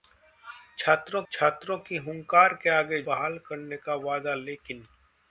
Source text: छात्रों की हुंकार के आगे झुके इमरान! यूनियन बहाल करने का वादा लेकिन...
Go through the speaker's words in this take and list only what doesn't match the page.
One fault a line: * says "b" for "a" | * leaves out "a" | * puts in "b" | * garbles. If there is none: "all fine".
* puts in "छात्रों"
* leaves out "झुके इमरान यूनियन"